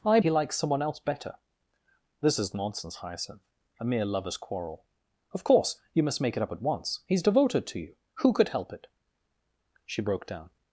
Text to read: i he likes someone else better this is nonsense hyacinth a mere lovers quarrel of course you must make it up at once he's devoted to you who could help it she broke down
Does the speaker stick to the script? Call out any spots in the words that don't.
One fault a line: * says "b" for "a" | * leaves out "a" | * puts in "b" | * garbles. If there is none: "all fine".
all fine